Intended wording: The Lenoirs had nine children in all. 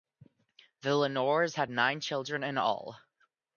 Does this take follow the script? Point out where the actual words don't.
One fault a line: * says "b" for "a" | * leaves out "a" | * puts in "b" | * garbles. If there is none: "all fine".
all fine